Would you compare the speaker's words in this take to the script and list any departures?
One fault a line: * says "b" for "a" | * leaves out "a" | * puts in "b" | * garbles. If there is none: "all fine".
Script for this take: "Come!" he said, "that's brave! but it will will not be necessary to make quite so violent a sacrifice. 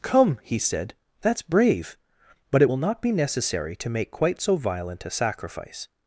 * leaves out "will"